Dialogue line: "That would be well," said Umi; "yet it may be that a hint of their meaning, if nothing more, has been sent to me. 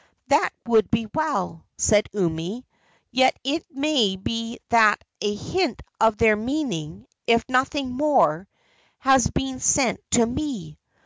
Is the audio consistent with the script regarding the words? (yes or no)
yes